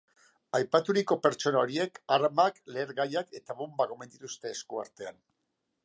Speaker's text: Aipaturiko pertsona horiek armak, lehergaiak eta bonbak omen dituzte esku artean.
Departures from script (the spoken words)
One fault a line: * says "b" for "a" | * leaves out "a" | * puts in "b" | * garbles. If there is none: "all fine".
all fine